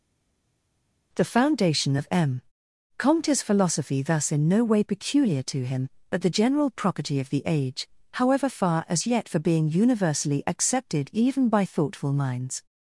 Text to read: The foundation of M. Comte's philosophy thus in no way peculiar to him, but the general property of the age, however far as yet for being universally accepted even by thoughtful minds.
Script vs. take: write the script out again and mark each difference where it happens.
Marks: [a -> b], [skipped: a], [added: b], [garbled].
The foundation of M. Comte's philosophy thus in no way peculiar to him, but the general property of the age, however far as yet for being universally accepted even by thoughtful minds.